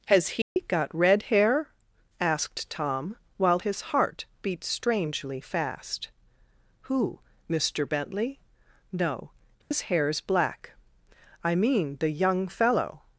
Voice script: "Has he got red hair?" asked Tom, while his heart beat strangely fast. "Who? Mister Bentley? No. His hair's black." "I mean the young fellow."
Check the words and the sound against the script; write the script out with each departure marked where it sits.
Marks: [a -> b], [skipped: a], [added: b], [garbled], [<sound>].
"Has he [dropout] got red hair?" asked Tom, while his heart beat strangely fast. "Who? Mister Bentley? No. His [dropout] hair's black." "I mean the young fellow."